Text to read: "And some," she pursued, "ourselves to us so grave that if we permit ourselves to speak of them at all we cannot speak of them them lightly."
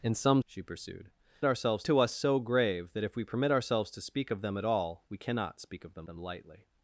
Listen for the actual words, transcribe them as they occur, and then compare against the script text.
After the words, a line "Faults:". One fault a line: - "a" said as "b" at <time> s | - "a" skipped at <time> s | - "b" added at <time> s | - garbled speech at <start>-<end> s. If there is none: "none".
"And some," she pursued, "ourselves to us so grave that if we permit ourselves to speak of them at all we cannot speak of them them lightly."
Faults:
none